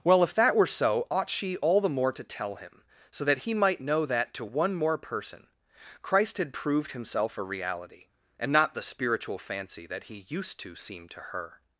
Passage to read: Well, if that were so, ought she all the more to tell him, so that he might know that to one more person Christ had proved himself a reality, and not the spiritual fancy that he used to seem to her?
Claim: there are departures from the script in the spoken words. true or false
false